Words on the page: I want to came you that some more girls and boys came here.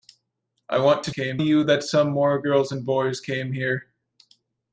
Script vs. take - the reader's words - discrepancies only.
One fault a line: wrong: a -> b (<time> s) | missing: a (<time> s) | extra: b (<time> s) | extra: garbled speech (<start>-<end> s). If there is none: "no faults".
no faults